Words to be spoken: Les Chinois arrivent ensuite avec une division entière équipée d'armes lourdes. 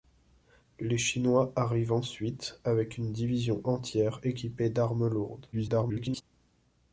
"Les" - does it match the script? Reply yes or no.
yes